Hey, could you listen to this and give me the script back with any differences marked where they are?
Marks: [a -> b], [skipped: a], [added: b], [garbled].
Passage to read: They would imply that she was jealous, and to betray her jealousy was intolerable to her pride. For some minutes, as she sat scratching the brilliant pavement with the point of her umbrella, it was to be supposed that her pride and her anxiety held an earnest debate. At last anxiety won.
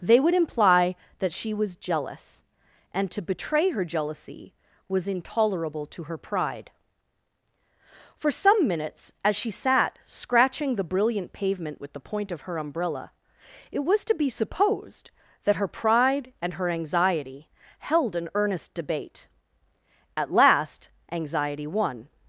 They would imply that she was jealous, and to betray her jealousy was intolerable to her pride. For some minutes, as she sat scratching the brilliant pavement with the point of her umbrella, it was to be supposed that her pride and her anxiety held an earnest debate. At last anxiety won.